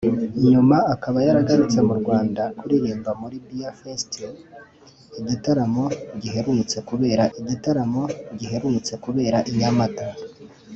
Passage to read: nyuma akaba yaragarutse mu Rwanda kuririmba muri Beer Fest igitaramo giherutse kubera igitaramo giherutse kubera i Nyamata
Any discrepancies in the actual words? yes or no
no